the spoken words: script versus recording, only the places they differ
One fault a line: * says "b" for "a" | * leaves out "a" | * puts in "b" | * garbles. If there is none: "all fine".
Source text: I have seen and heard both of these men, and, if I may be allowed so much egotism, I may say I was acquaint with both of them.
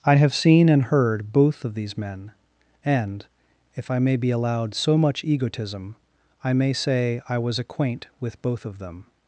all fine